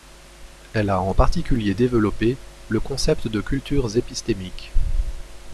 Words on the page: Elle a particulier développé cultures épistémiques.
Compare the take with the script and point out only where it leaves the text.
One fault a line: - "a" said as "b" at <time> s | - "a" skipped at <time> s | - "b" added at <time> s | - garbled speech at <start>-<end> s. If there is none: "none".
- "en" added at 1.0 s
- "le concept de" added at 2.7 s